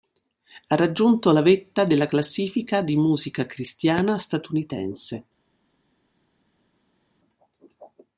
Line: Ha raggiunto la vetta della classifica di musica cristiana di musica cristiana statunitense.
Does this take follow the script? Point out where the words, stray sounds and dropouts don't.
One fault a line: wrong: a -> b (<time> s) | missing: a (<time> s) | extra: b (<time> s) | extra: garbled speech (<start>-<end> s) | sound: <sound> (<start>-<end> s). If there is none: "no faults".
missing: di musica cristiana (4.2 s)